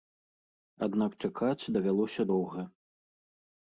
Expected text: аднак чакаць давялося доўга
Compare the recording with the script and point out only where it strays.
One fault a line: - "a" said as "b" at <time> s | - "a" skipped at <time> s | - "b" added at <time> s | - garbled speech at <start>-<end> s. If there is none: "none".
none